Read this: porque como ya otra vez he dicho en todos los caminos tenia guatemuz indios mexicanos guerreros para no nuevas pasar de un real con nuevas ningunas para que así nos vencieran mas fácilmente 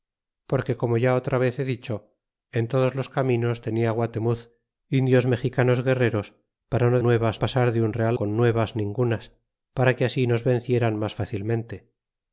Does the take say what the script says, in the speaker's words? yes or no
yes